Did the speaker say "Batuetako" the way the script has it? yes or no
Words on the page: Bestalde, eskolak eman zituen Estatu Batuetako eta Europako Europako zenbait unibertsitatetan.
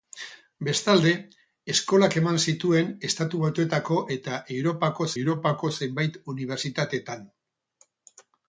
yes